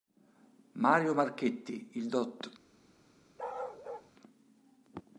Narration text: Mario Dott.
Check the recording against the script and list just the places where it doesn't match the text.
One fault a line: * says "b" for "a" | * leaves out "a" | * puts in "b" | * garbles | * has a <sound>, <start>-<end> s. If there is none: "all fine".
* puts in "Marchetti il"
* has a bark, 3.4-4.1 s